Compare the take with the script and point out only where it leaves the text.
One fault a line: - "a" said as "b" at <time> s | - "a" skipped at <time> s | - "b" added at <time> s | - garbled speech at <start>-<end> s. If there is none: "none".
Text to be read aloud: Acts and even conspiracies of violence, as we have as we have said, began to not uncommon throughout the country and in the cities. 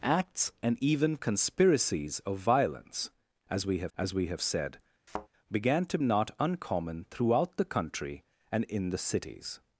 none